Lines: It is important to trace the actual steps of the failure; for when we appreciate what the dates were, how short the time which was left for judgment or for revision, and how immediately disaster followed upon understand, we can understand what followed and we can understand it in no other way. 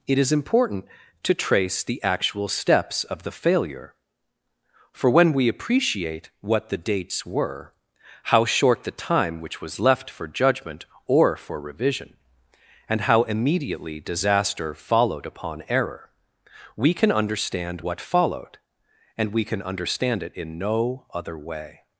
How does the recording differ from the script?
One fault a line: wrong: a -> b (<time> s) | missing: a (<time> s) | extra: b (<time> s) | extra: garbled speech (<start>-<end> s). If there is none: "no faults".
wrong: understand -> error (15.7 s)